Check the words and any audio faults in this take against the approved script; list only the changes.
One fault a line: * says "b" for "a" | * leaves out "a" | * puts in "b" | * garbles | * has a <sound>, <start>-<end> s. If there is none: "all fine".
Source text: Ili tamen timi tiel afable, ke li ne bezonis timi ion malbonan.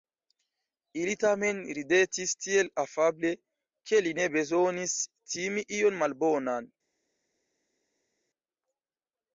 * says "ridetis" for "timi"